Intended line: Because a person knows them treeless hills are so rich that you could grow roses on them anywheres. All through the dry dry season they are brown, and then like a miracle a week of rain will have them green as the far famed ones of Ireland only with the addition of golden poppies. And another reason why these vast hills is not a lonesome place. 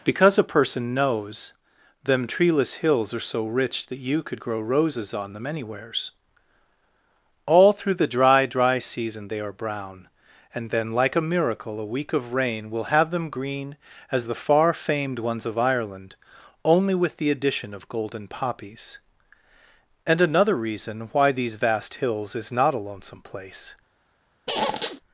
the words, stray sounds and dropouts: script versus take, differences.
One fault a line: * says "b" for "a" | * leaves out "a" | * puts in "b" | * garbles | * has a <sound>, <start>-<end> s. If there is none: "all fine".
* has a squeak, 24.5-25.0 s